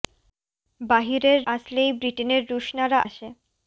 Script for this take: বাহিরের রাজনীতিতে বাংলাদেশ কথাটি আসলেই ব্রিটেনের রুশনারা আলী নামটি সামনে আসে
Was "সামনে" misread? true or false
true